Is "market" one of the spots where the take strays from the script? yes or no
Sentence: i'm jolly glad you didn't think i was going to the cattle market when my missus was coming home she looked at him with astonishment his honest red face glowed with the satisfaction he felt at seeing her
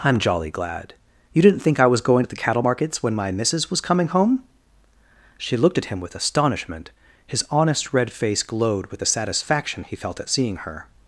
yes